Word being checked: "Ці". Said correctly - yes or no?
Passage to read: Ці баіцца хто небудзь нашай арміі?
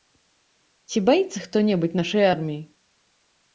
yes